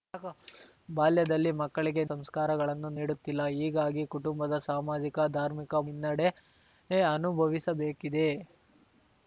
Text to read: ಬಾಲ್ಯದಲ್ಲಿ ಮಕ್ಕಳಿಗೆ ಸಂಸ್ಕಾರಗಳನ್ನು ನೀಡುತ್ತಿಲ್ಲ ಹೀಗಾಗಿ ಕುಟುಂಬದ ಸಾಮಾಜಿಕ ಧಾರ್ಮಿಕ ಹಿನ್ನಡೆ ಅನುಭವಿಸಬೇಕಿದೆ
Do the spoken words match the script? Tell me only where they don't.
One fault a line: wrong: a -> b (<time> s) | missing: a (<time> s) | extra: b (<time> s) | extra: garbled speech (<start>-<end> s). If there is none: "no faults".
no faults